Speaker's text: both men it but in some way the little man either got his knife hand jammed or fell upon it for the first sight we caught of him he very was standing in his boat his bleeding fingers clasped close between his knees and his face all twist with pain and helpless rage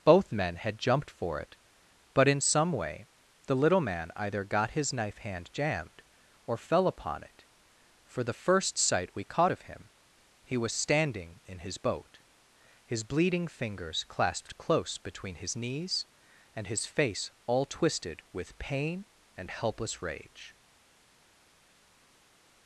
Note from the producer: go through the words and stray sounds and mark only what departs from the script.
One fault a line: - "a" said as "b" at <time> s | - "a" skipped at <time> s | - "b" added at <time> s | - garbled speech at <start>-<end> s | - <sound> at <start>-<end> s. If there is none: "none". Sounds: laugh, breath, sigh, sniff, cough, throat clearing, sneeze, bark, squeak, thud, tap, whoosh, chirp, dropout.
- "had jumped for" added at 0.6 s
- "very" skipped at 10.6 s
- "twist" said as "twisted" at 17.7 s